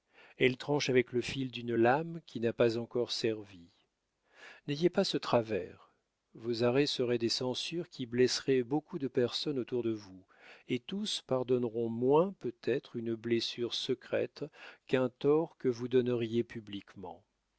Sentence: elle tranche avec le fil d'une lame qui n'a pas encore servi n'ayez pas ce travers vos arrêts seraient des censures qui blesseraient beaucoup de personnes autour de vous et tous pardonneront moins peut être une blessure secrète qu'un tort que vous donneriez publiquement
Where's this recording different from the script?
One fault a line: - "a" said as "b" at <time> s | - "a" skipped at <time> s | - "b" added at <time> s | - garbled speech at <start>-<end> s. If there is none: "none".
none